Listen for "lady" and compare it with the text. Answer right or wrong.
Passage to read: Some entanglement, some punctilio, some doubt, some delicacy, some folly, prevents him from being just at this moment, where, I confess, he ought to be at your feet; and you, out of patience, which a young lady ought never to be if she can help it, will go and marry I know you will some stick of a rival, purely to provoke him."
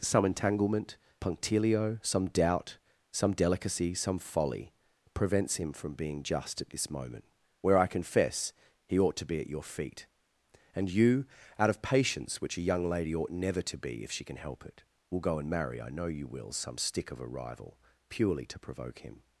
right